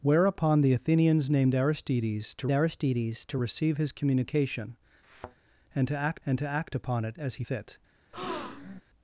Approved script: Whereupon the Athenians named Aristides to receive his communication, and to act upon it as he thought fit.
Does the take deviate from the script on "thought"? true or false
true